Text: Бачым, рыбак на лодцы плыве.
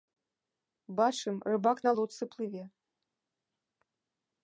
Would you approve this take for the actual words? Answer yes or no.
yes